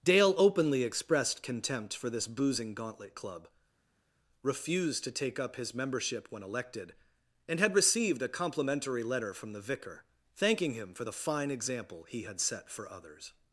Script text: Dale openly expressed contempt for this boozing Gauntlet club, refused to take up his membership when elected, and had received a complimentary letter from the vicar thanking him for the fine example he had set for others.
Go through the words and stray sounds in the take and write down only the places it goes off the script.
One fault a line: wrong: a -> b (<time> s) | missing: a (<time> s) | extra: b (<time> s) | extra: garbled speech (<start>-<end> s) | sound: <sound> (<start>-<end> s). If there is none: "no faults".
no faults